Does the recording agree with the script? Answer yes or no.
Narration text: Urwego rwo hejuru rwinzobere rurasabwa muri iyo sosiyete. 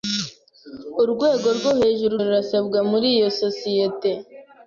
no